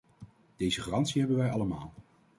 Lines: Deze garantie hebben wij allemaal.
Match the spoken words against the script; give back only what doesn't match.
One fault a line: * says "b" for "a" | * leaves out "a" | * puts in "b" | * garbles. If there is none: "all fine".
all fine